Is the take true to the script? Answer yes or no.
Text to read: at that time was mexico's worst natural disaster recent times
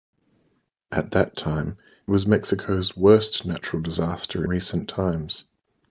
yes